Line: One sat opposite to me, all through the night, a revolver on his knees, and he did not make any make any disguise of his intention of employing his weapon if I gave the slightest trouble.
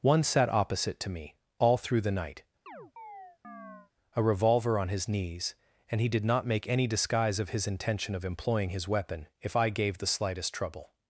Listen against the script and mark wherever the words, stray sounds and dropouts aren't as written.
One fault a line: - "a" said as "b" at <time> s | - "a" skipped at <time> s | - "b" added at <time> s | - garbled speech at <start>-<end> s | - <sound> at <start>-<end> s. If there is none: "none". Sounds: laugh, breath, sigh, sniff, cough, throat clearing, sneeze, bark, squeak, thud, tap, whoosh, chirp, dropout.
- chirp at 2.7-3.9 s
- "make any" skipped at 6.9 s